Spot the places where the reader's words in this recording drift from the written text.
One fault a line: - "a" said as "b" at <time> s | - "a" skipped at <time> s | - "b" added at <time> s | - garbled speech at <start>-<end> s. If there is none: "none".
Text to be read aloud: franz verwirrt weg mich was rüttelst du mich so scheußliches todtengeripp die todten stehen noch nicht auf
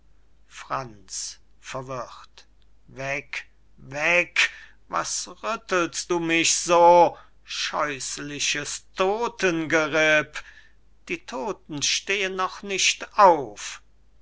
- "mich" said as "weg" at 3.8 s